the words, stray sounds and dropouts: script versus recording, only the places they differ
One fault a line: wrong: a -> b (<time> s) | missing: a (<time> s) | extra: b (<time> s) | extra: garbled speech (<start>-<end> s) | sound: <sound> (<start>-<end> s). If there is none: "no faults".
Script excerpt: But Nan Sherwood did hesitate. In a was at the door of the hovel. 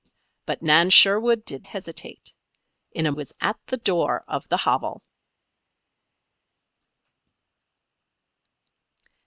no faults